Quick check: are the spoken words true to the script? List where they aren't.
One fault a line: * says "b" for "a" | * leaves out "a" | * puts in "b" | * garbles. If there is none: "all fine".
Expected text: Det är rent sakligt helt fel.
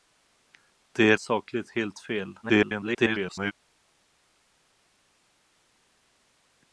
* leaves out "rent"
* garbles